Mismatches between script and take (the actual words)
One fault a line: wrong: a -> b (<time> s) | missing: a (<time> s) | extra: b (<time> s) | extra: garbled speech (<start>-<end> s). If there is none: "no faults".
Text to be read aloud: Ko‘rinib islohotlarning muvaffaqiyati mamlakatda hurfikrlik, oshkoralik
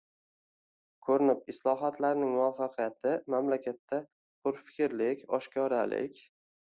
no faults